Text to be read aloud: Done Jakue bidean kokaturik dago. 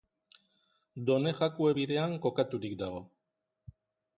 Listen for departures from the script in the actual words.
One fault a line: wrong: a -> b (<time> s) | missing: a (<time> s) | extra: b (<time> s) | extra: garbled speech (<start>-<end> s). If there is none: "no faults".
no faults